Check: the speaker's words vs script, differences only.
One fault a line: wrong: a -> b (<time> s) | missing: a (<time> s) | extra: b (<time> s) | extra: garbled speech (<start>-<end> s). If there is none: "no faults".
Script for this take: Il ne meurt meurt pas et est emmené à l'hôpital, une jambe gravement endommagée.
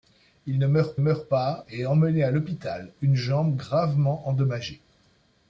no faults